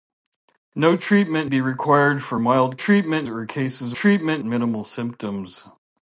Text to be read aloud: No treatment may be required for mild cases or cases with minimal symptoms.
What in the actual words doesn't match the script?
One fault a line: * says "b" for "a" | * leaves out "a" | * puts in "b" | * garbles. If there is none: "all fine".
* leaves out "may"
* says "treatment" for "cases"
* says "treatment" for "with"